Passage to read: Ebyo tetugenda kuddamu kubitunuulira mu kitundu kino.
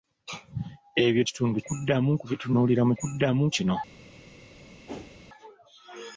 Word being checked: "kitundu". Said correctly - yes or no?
no